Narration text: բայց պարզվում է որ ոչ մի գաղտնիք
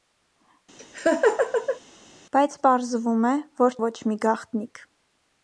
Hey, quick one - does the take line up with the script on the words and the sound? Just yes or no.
no